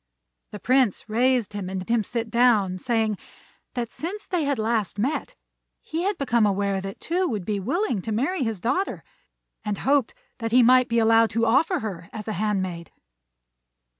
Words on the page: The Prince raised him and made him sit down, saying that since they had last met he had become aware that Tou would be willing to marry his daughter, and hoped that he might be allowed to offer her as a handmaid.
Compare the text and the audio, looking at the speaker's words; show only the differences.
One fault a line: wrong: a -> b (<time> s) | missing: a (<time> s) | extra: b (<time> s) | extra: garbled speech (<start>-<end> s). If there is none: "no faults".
missing: made (1.9 s)